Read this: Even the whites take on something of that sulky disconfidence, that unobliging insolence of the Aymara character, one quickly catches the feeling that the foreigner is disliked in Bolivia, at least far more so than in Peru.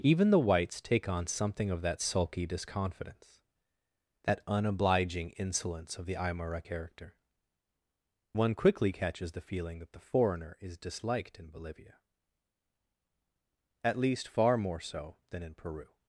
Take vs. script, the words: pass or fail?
pass